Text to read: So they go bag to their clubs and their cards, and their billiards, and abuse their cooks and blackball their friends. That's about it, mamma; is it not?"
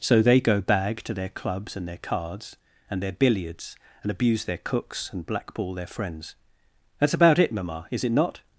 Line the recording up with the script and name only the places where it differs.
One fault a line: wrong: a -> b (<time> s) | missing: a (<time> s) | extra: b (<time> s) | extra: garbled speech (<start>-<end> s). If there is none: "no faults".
no faults